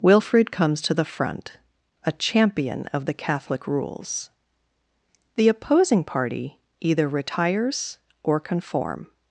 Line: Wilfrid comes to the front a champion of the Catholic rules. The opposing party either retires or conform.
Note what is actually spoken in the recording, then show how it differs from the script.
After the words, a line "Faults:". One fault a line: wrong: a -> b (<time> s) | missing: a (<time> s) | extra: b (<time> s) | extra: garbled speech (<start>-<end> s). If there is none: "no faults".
Wilfrid comes to the front a champion of the Catholic rules. The opposing party either retires or conform.
Faults:
no faults